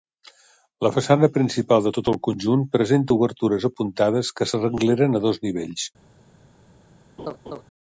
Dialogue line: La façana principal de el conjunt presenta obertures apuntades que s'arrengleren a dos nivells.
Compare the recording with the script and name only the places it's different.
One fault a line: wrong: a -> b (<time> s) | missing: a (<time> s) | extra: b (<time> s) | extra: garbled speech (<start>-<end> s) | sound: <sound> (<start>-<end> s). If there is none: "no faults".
extra: tot (2.0 s)
sound: laugh (7.2-7.6 s)